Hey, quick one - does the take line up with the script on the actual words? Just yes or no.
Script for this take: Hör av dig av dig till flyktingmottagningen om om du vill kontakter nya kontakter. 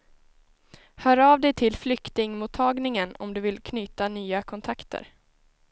no